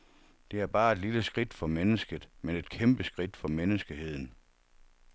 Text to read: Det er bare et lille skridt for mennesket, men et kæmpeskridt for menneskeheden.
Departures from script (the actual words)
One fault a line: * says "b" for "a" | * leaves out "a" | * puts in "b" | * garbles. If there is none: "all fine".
all fine